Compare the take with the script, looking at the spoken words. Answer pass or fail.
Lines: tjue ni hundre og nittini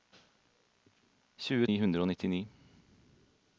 pass